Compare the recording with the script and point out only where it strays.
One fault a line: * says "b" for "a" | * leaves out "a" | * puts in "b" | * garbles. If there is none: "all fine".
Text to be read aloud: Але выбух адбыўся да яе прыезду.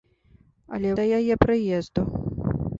* leaves out "выбух адбыўся"